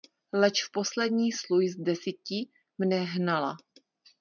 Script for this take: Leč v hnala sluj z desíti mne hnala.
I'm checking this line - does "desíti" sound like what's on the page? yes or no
yes